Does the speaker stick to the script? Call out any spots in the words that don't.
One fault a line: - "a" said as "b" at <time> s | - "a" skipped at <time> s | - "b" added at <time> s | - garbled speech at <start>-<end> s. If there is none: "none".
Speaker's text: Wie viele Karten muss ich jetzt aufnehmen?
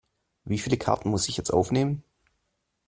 none